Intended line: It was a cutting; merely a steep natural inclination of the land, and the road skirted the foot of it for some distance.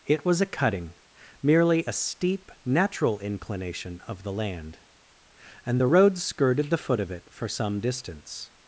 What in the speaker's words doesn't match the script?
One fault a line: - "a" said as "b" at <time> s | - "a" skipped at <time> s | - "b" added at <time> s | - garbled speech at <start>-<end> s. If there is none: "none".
none